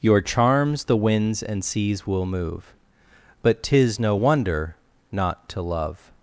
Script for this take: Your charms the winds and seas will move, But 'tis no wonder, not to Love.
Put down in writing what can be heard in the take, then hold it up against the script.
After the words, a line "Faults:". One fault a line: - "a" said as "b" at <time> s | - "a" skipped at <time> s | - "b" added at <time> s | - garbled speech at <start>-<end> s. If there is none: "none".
Your charms the winds and seas will move, But 'tis no wonder, not to Love.
Faults:
none